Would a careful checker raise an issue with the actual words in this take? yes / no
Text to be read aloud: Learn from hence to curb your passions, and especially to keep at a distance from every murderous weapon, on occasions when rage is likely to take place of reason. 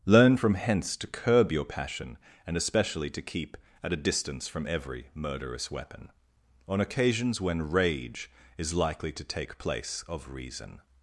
yes